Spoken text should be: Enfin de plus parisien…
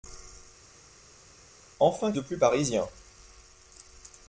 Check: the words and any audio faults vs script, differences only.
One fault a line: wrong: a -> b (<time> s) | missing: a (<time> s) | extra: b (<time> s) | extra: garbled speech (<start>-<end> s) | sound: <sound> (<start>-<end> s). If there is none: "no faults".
no faults